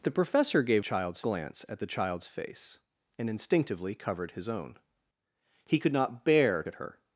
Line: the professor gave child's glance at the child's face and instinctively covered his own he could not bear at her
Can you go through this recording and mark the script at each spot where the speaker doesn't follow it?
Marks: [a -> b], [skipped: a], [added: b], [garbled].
the professor gave child's glance at the child's face and instinctively covered his own he could not bear at her